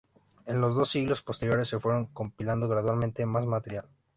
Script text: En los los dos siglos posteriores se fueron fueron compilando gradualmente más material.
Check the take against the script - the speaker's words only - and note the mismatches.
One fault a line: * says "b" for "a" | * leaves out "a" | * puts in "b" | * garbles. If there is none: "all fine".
* leaves out "los"
* leaves out "fueron"